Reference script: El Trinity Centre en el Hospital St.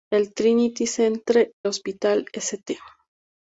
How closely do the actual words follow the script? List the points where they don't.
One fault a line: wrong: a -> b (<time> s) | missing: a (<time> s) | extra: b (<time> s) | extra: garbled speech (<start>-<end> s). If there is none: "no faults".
missing: en el (1.5 s)